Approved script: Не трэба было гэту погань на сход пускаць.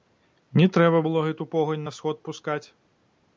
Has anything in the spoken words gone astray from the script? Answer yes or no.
no